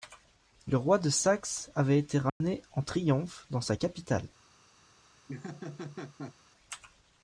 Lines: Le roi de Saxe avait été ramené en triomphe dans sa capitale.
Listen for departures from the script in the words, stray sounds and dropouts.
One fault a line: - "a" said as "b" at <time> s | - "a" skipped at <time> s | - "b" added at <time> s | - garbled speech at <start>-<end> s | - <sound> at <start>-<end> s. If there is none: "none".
- dropout at 2.3-2.4 s
- laugh at 5.3-6.3 s